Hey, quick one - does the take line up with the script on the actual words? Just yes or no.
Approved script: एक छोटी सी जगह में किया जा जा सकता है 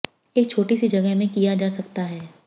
no